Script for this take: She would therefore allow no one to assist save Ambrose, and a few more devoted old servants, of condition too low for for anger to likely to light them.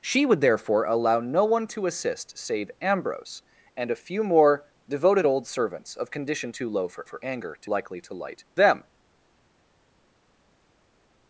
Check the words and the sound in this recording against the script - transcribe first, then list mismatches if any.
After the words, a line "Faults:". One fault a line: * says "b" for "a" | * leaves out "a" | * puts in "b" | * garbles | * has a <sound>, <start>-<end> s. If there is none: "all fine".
She would therefore allow no one to assist save Ambrose, and a few more devoted old servants, of condition too low for for anger to likely to light them.
Faults:
all fine